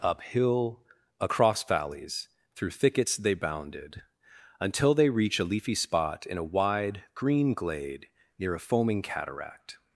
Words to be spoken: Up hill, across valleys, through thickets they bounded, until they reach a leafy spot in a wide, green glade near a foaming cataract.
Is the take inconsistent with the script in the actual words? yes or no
no